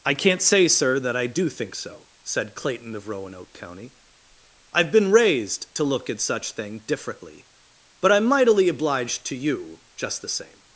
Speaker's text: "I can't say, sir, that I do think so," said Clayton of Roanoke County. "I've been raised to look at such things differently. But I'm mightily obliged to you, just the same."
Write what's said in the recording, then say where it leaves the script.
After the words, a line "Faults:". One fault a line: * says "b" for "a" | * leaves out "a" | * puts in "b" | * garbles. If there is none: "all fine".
"I can't say, sir, that I do think so," said Clayton of Roanoke County. "I've been raised to look at such thing differently. But I'm mightily obliged to you, just the same."
Faults:
* says "thing" for "things"